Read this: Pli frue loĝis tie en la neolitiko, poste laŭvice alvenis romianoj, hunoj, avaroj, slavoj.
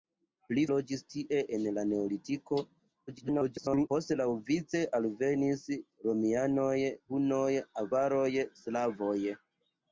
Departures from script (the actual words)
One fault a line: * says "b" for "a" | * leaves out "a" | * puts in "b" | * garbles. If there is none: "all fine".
* leaves out "frue"
* garbles